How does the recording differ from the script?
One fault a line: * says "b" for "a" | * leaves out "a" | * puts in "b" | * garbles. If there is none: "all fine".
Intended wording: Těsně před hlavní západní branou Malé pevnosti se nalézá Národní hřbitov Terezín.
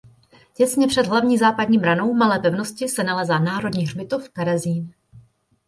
all fine